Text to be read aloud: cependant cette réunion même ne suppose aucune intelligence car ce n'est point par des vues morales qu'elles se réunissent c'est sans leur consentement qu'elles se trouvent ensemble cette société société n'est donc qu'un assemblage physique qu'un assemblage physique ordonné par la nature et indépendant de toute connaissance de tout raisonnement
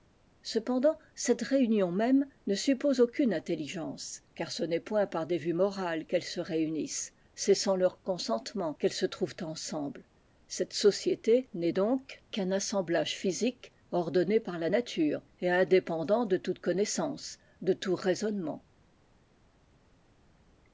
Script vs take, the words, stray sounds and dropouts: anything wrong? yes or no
yes